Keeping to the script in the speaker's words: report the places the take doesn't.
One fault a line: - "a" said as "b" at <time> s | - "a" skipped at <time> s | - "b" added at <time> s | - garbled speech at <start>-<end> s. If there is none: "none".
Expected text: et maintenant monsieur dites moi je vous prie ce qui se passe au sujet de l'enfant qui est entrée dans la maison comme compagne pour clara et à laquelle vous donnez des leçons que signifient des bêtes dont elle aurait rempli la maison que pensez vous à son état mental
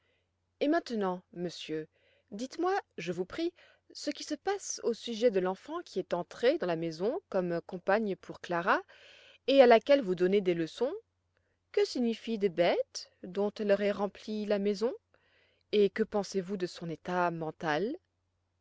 - "et" added at 15.7 s
- "à" said as "de" at 16.6 s